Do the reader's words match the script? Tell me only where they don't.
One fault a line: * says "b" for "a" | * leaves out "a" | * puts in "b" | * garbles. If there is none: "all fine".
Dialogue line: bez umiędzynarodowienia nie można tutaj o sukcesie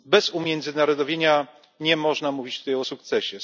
* puts in "mówić"